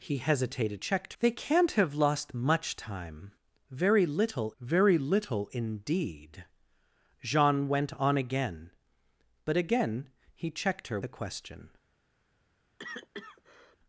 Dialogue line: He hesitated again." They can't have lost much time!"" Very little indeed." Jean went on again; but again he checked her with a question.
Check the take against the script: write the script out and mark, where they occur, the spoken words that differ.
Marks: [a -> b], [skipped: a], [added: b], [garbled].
He hesitated [again." -> checked] They can't have lost much time!"" Very little [added: very little] indeed." Jean went on again; but again he checked her [skipped: with] a question.